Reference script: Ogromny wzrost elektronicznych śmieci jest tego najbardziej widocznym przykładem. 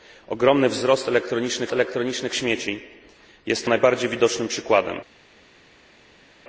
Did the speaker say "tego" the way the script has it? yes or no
no